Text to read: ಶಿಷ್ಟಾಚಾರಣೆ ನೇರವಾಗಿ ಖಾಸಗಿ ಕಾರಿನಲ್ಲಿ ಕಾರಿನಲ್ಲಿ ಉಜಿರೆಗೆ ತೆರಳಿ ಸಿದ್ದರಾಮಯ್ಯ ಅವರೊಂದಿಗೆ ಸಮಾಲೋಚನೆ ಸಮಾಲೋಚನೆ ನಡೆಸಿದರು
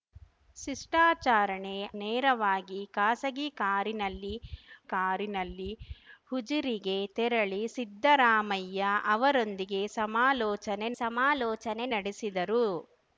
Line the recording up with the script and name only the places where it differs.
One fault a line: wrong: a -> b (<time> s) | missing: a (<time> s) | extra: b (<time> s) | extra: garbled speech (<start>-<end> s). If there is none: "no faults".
no faults